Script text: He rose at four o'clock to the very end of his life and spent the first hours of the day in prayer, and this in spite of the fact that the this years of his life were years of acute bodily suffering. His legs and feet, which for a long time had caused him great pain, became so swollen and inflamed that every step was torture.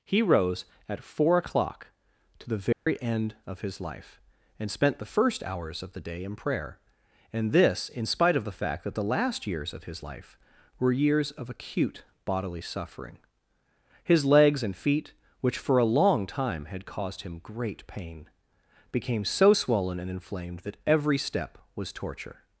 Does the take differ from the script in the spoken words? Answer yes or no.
yes